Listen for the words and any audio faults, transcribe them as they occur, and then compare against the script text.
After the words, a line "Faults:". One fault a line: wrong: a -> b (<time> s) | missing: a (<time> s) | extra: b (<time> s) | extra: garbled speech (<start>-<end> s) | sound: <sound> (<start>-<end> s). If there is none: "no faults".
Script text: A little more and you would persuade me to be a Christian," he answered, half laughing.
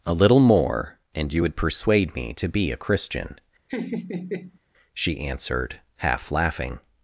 A little more and you would persuade me to be a Christian," she answered, half laughing.
Faults:
sound: laugh (3.7-4.6 s)
wrong: he -> she (4.9 s)